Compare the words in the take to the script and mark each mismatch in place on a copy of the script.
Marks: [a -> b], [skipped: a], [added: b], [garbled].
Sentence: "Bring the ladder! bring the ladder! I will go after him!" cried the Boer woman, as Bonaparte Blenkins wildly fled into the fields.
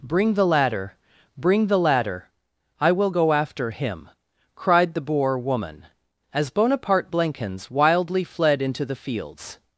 "Bring the ladder! bring the ladder! I will go after him!" cried the Boer woman, as Bonaparte Blenkins wildly fled into the fields.